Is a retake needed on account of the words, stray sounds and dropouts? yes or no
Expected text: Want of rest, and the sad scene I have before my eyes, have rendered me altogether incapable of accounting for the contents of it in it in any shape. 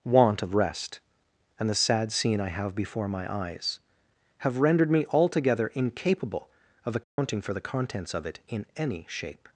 yes